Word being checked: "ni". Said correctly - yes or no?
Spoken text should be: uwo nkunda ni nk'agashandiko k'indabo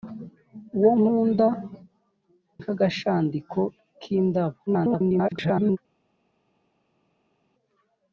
no